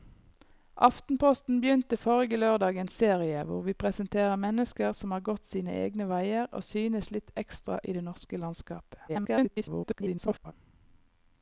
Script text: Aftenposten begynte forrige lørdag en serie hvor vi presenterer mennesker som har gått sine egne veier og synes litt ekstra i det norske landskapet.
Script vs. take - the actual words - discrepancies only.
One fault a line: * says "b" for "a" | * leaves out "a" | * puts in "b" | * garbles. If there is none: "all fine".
* garbles